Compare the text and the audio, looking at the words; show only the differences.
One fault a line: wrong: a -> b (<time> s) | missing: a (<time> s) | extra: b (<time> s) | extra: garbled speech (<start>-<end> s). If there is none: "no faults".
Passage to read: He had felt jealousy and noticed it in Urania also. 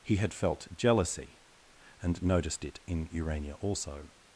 no faults